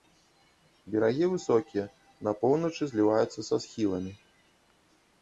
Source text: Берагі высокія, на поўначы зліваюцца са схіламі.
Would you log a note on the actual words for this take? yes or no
no